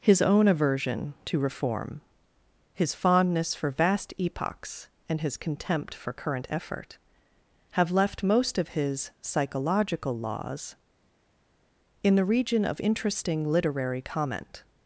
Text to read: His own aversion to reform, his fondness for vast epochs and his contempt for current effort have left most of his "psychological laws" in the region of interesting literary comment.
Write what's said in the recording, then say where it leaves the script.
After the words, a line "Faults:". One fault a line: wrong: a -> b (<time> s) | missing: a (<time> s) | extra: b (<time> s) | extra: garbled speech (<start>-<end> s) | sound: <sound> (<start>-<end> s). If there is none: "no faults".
His own aversion to reform, his fondness for vast epochs and his contempt for current effort have left most of his "psychological laws" in the region of interesting literary comment.
Faults:
no faults